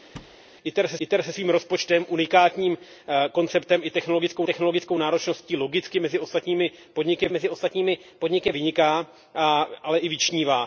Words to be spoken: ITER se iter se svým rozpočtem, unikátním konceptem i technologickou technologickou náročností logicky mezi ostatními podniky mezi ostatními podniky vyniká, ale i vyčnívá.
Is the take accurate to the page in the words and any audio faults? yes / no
no